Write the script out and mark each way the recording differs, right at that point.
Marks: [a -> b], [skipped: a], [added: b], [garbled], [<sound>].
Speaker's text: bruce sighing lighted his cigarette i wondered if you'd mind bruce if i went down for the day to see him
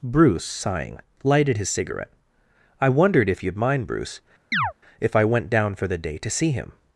bruce sighing lighted his cigarette i wondered if you'd mind bruce [chirp] if i went down for the day to see him